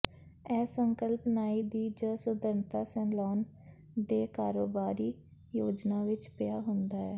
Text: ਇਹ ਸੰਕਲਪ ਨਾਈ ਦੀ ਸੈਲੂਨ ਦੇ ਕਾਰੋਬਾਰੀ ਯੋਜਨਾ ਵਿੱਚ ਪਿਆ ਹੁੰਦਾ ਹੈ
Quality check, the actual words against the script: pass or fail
fail